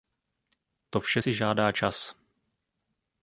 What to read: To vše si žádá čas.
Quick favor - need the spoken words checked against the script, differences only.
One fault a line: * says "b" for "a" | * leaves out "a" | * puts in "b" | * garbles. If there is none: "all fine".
all fine